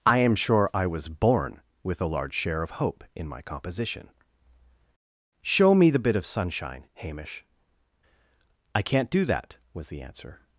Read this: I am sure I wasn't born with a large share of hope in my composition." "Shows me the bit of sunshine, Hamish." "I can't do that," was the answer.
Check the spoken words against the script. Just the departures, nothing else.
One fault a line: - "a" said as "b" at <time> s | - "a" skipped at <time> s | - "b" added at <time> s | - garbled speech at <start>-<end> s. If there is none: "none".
- "wasn't" said as "was" at 0.9 s
- "Shows" said as "Show" at 5.4 s